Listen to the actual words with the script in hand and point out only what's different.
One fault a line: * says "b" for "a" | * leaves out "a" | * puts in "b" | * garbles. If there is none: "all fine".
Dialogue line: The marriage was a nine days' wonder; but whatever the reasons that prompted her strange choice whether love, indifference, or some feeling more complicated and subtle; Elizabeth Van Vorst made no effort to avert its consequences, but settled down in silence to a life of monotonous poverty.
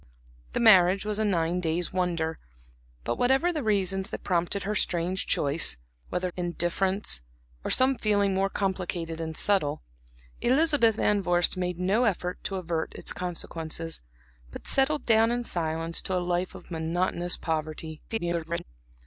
* leaves out "love"
* garbles